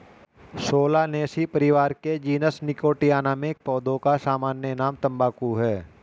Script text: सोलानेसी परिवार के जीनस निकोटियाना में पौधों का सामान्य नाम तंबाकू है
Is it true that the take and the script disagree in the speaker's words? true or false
false